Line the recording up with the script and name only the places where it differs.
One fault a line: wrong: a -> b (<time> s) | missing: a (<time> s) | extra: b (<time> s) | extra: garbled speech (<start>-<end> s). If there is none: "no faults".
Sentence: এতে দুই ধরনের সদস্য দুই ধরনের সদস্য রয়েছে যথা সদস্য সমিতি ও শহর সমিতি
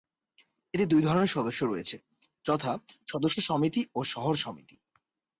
missing: দুই ধরনের সদস্য (1.6 s)